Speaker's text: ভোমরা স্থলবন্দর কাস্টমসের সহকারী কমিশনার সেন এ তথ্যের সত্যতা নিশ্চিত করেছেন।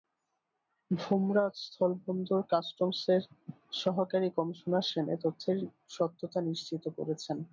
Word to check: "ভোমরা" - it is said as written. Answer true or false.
true